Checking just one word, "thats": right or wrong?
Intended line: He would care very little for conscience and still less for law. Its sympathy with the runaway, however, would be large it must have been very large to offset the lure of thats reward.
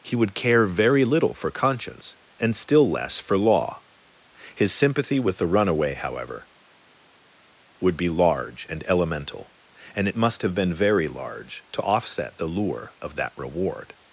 wrong